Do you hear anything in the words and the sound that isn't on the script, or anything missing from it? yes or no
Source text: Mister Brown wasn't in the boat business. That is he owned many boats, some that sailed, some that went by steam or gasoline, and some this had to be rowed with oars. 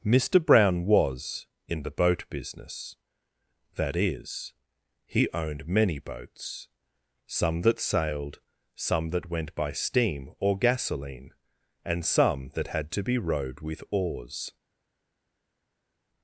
yes